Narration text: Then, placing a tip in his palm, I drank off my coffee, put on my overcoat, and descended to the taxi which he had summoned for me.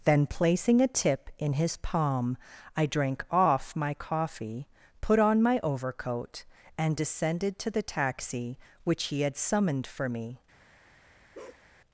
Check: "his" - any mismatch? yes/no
no